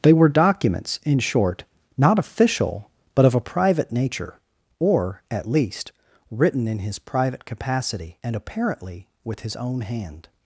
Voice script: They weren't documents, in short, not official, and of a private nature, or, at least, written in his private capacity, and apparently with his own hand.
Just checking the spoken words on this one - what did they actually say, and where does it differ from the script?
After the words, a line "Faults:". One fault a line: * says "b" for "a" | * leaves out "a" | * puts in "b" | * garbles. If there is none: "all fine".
They were documents, in short, not official, but of a private nature, or, at least, written in his private capacity, and apparently with his own hand.
Faults:
* says "were" for "weren't"
* says "but" for "and"